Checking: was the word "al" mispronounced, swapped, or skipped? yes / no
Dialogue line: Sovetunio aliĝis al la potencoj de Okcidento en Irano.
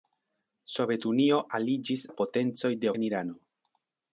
yes